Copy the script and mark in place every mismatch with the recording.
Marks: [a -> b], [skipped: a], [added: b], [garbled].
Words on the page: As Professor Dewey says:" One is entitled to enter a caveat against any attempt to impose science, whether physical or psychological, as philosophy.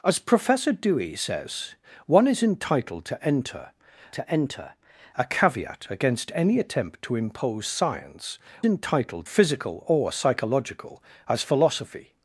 As Professor Dewey says:" One is entitled to enter [added: to enter] a caveat against any attempt to impose science, [whether -> entitled] physical or psychological, as philosophy.